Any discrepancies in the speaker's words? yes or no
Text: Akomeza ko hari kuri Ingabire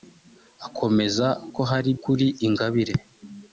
no